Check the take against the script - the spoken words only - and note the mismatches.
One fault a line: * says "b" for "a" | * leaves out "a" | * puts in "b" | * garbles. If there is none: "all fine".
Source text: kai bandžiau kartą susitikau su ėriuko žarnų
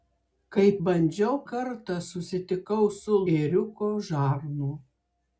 all fine